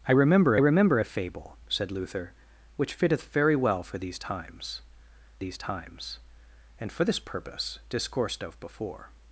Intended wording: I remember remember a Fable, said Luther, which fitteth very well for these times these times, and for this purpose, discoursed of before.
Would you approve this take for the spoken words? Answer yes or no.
yes